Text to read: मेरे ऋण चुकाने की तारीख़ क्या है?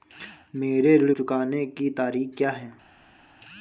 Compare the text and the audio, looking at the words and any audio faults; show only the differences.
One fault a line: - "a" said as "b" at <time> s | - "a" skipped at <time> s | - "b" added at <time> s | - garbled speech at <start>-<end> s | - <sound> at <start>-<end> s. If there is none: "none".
none